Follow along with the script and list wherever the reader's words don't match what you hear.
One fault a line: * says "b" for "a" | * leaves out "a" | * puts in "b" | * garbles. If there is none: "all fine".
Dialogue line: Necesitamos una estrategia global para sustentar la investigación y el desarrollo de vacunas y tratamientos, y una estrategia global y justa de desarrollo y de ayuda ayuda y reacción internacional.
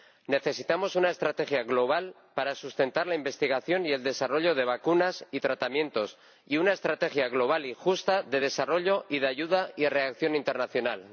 * leaves out "ayuda"